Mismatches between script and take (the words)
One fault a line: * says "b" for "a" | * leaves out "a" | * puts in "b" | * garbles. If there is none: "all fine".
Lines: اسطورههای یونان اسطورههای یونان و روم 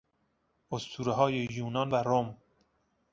* leaves out "اسطورههای یونان"